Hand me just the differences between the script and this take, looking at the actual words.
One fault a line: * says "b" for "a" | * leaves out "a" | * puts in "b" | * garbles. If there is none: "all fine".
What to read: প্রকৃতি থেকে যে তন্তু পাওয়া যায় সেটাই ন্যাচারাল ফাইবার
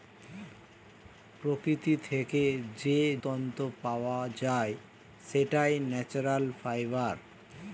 all fine